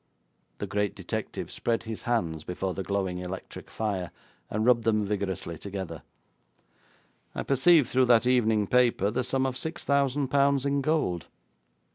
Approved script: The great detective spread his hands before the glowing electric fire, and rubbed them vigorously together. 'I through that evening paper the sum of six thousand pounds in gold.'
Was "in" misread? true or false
false